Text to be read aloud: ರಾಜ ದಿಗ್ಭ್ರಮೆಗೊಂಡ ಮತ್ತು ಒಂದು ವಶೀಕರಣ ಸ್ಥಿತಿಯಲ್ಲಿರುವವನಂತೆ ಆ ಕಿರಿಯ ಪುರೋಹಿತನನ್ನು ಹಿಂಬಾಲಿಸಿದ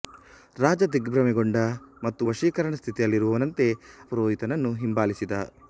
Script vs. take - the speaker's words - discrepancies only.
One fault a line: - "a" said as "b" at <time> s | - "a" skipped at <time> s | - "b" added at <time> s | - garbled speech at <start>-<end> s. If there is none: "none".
- "ಒಂದು" skipped at 2.2 s
- "ಆ ಕಿರಿಯ" skipped at 3.7 s